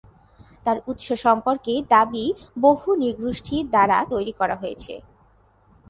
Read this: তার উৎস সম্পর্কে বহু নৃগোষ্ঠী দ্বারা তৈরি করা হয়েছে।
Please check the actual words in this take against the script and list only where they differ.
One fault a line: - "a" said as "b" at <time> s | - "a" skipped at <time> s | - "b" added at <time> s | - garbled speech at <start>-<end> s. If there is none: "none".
- "দাবি" added at 1.9 s